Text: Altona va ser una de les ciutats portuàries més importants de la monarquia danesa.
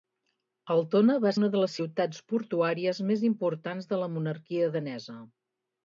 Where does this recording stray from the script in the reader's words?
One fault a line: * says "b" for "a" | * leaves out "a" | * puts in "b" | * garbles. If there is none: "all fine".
* leaves out "ser"